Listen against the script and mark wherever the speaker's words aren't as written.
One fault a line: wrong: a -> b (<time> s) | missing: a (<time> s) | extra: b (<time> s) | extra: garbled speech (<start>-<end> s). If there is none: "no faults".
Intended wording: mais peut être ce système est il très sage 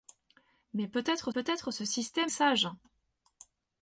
extra: peut être (1.3 s)
missing: est il très (2.3 s)